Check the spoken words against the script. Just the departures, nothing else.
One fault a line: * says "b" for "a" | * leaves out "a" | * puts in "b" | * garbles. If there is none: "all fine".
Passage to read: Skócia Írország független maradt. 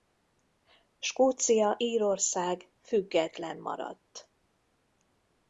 all fine